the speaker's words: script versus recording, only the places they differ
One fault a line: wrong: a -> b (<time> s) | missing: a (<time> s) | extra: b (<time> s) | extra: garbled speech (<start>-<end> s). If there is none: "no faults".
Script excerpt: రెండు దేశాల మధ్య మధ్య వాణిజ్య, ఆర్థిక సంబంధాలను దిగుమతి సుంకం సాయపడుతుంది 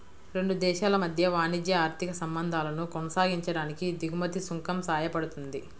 missing: మధ్య (1.3 s)
extra: కొనసాగించడానికి (2.9 s)